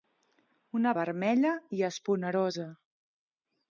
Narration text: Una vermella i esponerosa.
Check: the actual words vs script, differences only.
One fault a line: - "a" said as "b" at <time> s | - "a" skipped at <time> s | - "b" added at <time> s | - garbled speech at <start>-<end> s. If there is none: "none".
none